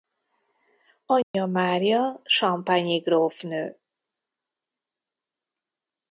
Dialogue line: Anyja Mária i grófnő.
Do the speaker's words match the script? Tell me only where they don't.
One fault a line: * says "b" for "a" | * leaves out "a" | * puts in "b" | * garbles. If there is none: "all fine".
* puts in "champagne"